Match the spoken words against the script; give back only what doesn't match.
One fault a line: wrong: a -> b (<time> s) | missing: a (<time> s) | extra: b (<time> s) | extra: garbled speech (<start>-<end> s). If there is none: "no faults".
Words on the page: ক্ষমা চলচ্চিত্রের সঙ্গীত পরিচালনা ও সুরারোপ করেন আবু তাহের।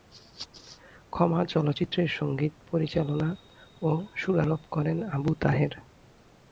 no faults